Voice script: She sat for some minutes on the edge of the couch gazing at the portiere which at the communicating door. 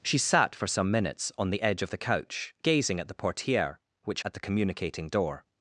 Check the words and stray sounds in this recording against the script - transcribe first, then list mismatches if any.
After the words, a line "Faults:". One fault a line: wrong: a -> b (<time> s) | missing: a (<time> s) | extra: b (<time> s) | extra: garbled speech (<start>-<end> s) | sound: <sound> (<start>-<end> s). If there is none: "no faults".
She sat for some minutes on the edge of the couch gazing at the portiere which at the communicating door.
Faults:
no faults